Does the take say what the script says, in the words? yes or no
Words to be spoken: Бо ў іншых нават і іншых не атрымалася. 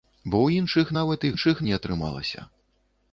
yes